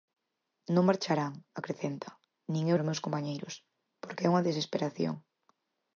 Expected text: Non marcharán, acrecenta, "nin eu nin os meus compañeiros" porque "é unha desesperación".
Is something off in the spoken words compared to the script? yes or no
yes